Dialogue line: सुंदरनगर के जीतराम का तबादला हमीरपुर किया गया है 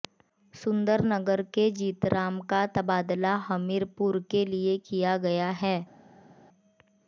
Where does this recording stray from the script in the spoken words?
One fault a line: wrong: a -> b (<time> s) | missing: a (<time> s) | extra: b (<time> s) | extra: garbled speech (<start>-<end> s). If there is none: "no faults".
extra: के लिए (4.3 s)